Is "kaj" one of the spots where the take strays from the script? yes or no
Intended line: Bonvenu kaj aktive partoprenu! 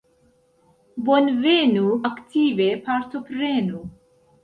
yes